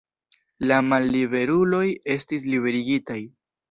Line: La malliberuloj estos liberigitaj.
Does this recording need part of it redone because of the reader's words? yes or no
yes